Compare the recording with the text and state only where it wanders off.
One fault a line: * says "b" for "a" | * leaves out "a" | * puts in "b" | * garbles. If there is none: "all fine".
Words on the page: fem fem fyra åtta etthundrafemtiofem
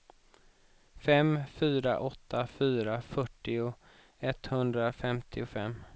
* says "fyra åtta" for "fem"
* says "fyrtio" for "åtta"